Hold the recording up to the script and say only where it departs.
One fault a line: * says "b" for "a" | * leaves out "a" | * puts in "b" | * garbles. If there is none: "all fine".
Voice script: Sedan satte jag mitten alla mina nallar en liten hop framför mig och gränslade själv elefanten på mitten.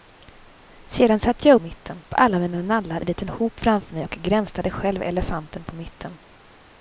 all fine